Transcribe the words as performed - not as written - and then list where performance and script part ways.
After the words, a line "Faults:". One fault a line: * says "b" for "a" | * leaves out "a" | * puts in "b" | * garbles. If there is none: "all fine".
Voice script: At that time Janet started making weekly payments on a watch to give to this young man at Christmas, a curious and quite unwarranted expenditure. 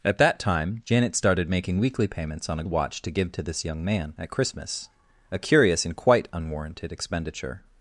At that time Janet started making weekly payments on a watch to give to this young man at Christmas, a curious and quite unwarranted expenditure.
Faults:
all fine